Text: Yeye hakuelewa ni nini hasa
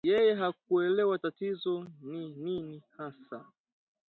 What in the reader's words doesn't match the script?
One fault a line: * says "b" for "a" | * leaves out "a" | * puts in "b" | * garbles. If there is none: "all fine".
* puts in "tatizo"